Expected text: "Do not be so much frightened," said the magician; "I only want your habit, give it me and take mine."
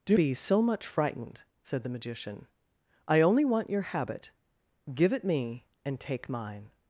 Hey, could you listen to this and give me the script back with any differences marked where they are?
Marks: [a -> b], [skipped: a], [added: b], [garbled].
"Do [skipped: not] be so much frightened," said the magician; "I only want your habit, give it me and take mine."